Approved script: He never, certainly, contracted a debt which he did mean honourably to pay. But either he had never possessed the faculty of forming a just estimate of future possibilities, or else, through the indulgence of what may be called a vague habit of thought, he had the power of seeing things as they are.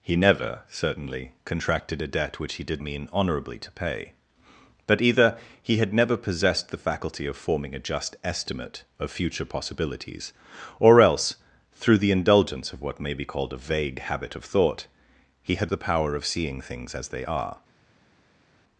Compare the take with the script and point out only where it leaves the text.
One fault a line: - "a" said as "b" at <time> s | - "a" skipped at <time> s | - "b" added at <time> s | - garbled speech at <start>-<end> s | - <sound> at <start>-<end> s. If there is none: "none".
none